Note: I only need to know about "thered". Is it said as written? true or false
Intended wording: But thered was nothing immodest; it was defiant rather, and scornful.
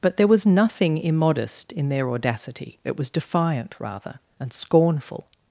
false